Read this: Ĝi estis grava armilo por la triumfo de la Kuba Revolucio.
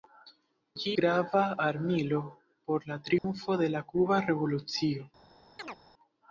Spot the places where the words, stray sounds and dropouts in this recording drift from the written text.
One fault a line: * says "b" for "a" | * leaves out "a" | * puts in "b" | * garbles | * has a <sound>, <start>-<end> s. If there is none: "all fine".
* leaves out "estis"
* has a dropout, 3.2-3.2 s
* has a chirp, 5.6-5.8 s